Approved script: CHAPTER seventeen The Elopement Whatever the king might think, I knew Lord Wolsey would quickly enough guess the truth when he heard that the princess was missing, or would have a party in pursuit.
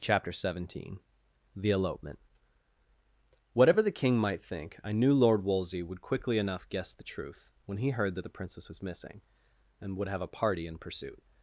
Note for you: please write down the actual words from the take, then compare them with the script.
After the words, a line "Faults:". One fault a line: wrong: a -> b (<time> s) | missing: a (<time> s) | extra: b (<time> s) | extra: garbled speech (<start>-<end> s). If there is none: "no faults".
CHAPTER seventeen The Elopement Whatever the king might think, I knew Lord Wolsey would quickly enough guess the truth when he heard that the princess was missing, and would have a party in pursuit.
Faults:
wrong: or -> and (9.8 s)